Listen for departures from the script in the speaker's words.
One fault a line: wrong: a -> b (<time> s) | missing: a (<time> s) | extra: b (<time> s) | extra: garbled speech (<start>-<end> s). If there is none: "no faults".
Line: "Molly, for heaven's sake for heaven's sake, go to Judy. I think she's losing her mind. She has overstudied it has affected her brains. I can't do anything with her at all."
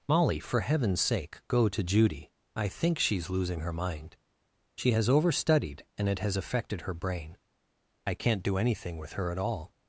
missing: for heaven's sake (1.4 s)
extra: and (6.0 s)
wrong: brains -> brain (6.9 s)